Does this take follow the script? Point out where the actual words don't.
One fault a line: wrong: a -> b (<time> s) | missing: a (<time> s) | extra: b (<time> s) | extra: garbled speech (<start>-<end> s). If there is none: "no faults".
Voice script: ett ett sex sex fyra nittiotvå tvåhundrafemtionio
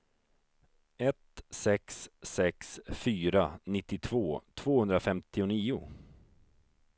missing: ett (1.4 s)